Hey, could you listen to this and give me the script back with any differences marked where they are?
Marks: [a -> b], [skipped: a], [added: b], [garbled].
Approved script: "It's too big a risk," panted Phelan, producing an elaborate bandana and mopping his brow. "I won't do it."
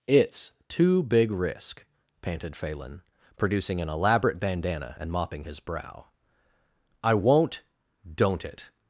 "It's too big [skipped: a] risk," panted Phelan, producing an elaborate bandana and mopping his brow. "I won't [do -> don't] it."